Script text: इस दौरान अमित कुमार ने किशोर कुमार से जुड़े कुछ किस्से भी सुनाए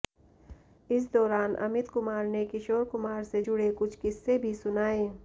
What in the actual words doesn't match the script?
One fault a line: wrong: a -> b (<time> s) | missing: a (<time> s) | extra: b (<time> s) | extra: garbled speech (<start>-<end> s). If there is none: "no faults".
no faults